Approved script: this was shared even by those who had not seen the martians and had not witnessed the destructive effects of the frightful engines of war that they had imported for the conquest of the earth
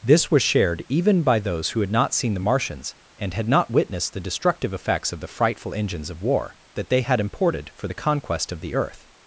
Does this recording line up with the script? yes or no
yes